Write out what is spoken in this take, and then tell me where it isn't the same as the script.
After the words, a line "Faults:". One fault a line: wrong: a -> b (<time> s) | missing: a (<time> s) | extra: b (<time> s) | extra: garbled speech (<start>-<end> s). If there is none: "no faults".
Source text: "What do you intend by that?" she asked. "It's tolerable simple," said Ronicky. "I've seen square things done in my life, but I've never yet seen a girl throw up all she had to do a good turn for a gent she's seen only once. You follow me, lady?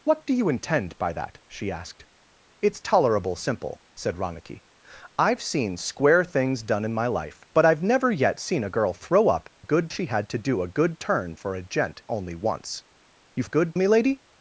"What do you intend by that?" she asked. "It's tolerable simple," said Ronicky. "I've seen square things done in my life, but I've never yet seen a girl throw up good she had to do a good turn for a gent only once. You good me, lady?
Faults:
wrong: all -> good (9.6 s)
missing: she's seen (12.0 s)
wrong: follow -> good (13.4 s)